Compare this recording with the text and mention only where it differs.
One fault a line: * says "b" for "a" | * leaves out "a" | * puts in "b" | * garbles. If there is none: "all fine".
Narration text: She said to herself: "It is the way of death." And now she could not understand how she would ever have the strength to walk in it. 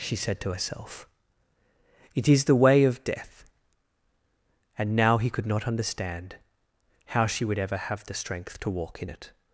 * says "he" for "she"